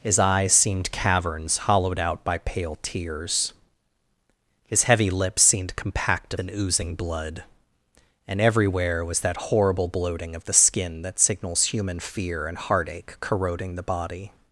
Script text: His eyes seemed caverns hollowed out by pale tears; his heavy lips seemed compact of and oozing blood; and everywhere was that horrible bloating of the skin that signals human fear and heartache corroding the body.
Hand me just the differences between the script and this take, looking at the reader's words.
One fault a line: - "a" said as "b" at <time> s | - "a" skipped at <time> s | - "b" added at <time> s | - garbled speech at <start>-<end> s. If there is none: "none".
none